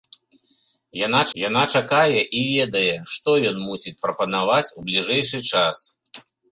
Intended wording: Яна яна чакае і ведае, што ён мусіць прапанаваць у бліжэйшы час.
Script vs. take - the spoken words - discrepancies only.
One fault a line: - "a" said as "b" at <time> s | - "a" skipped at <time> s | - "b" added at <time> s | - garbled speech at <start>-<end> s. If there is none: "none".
none